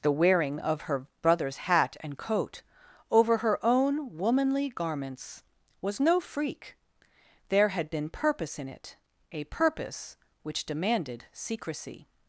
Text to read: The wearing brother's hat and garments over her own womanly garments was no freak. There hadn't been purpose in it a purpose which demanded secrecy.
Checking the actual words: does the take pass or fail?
fail